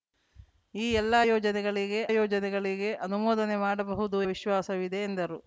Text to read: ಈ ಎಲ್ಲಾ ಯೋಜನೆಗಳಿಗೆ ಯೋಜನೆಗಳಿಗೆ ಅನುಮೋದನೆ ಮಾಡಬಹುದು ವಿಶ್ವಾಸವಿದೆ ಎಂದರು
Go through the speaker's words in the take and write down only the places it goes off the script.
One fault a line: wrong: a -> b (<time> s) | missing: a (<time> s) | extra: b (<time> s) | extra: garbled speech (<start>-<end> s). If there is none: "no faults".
no faults